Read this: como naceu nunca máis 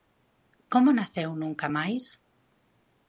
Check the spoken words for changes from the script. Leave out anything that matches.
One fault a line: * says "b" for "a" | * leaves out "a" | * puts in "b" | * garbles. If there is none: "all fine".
all fine